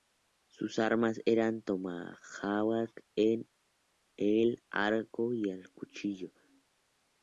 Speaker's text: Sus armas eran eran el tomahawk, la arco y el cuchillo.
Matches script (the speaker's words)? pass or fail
fail